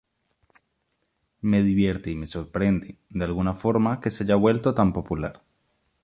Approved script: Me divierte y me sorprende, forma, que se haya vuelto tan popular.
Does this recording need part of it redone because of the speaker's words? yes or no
yes